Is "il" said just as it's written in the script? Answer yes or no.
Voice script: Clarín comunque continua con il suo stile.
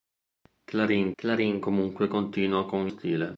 no